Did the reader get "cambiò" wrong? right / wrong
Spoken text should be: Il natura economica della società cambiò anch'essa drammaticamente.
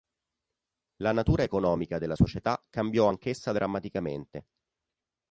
right